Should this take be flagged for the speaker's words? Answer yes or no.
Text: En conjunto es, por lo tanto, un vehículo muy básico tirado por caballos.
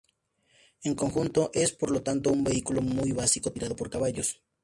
no